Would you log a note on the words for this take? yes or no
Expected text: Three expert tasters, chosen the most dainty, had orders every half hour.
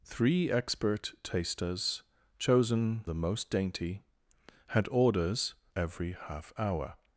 no